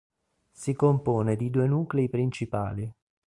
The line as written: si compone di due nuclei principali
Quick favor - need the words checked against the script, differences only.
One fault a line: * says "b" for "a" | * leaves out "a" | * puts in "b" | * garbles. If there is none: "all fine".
all fine